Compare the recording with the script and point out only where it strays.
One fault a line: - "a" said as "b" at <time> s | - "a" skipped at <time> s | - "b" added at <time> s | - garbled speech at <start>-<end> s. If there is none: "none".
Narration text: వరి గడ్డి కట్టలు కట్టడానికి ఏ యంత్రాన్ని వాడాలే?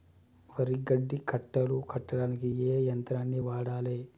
none